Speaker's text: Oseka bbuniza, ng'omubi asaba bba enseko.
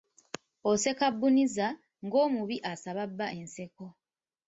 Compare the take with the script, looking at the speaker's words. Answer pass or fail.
pass